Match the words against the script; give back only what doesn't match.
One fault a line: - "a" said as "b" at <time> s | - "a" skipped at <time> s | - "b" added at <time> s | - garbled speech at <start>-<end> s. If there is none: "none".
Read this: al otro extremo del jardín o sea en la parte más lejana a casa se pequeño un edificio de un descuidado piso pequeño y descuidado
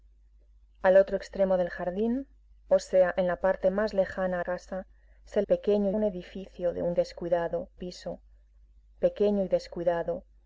none